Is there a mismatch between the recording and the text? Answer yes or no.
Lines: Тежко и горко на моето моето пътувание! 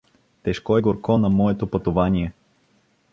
yes